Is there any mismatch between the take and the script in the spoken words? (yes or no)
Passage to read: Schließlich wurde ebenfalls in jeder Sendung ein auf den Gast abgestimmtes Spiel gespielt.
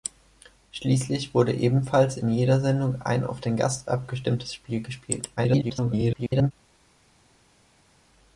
yes